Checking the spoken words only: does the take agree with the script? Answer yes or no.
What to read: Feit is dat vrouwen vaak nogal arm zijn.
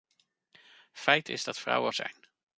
no